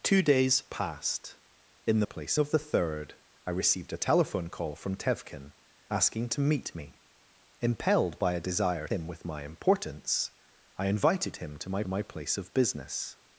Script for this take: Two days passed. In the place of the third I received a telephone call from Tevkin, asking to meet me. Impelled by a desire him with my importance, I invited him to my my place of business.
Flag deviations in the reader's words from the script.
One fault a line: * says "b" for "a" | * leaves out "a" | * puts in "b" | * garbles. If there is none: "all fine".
all fine